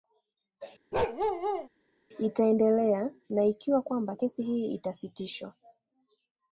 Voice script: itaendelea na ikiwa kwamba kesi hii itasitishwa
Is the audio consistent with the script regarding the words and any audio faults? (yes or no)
no